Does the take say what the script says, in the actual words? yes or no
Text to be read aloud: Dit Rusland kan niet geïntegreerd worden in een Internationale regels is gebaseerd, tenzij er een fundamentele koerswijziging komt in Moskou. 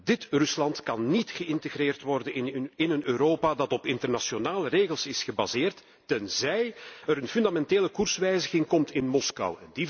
no